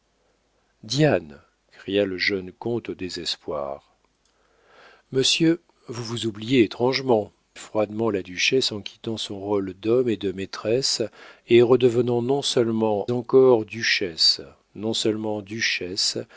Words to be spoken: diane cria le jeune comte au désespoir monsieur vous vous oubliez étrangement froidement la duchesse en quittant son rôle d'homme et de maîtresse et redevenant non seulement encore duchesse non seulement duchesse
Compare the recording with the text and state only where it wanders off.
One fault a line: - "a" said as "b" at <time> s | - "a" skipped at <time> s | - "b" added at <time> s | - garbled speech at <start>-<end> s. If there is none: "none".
none